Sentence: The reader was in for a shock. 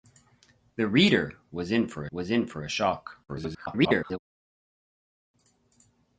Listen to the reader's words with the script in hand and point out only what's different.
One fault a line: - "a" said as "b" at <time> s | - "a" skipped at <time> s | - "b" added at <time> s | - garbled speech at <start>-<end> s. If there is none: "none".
- "was in for" added at 2.1 s
- garbled speech at 3.3-4.2 s